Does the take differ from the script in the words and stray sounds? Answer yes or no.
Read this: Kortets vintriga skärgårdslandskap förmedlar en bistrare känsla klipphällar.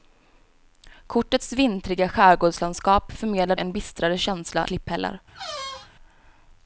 yes